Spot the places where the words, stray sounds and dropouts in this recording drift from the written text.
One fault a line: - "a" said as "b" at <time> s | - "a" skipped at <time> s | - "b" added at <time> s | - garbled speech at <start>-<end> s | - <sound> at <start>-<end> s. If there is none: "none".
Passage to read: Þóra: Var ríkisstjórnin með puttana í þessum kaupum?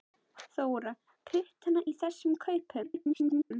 - "Var ríkisstjórnin með" skipped at 0.9 s
- garbled speech at 2.8-3.5 s